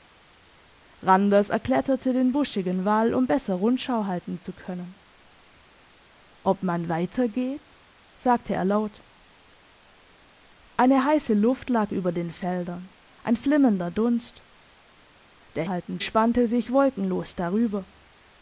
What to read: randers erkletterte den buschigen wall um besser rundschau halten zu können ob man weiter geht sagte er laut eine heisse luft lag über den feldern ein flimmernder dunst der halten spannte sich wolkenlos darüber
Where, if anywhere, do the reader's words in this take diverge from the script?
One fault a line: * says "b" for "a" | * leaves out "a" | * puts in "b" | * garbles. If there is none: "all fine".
all fine